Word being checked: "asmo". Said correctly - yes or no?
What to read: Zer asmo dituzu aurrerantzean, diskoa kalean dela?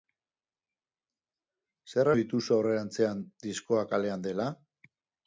no